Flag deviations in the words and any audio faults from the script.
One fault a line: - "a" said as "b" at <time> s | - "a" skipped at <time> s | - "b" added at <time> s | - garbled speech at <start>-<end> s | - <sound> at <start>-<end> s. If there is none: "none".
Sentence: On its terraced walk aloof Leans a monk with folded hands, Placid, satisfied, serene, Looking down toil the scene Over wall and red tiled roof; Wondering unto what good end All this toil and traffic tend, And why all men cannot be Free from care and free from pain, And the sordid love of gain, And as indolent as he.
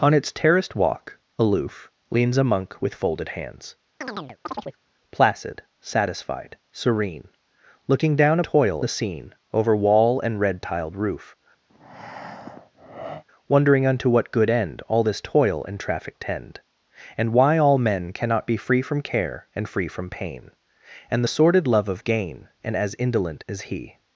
- chirp at 4.0-4.8 s
- breath at 11.7-13.2 s